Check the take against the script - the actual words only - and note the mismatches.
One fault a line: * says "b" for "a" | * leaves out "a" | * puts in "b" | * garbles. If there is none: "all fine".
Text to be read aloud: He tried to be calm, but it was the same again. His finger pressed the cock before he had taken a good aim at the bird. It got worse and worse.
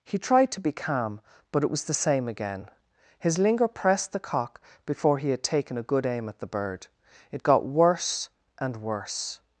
* says "linger" for "finger"